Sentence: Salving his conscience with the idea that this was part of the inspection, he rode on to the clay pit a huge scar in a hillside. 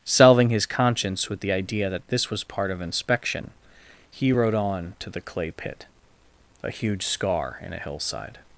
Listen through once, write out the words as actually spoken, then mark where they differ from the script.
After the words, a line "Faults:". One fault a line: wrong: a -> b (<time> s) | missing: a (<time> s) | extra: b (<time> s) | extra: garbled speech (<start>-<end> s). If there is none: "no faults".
Salving his conscience with the idea that this was part of inspection, he rode on to the clay pit a huge scar in a hillside.
Faults:
missing: the (2.8 s)